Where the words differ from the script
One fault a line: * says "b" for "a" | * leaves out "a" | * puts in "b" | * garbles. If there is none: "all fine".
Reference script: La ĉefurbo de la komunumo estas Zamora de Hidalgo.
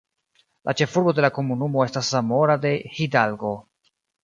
all fine